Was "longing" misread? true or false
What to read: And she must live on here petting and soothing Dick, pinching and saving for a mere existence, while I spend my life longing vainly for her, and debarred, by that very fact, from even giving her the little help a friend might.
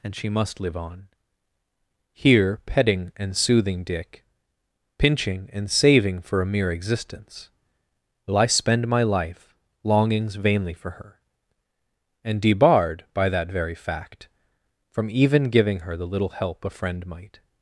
true